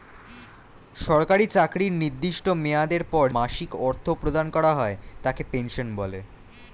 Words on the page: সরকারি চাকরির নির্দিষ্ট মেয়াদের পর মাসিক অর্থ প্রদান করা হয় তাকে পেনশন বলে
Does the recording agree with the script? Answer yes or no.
yes